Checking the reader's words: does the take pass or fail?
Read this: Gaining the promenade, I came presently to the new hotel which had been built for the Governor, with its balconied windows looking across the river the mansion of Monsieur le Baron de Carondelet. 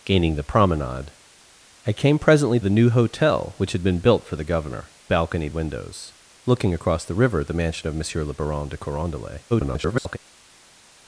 fail